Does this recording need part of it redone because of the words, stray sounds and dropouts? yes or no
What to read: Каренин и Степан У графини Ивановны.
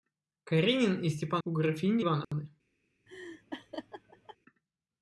yes